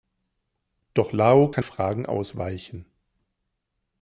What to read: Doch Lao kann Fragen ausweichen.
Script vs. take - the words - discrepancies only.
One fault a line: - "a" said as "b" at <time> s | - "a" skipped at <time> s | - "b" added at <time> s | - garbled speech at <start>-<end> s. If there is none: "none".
none